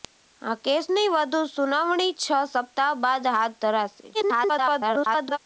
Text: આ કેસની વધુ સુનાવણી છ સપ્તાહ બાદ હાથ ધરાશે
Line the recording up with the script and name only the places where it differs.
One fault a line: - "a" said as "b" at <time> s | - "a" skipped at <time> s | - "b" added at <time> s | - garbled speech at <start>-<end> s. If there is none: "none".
- garbled speech at 4.1-5.4 s